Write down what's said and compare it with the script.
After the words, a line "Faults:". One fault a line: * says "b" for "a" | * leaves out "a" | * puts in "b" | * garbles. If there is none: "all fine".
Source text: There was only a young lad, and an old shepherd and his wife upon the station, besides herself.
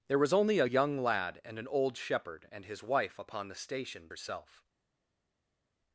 There was only a young lad, and an old shepherd and his wife upon the station, herself.
Faults:
* leaves out "besides"